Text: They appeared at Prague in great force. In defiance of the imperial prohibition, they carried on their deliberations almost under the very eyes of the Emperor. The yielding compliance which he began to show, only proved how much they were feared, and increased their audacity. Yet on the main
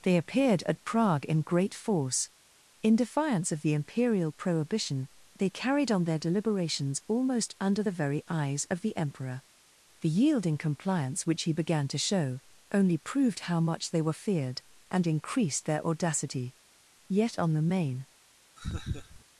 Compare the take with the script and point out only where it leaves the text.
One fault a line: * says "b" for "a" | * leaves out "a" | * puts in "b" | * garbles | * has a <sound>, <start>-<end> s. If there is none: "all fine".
* has a laugh, 18.6-19.2 s